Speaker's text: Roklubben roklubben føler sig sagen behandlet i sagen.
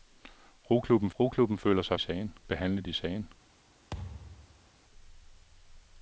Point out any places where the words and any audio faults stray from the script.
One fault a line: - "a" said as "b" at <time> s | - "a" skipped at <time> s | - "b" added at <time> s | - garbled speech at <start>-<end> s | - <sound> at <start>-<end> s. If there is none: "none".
- thud at 3.9-4.7 s